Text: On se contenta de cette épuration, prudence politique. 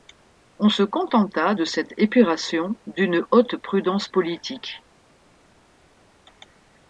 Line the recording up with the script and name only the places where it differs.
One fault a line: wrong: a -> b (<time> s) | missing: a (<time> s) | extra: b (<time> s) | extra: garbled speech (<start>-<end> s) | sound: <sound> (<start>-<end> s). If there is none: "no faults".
extra: d'une haute (2.9 s)